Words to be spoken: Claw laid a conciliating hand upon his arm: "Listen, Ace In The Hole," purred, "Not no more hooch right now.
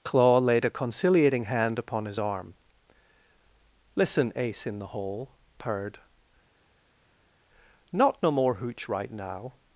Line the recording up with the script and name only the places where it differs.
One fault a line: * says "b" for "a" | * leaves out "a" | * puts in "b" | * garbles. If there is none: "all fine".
all fine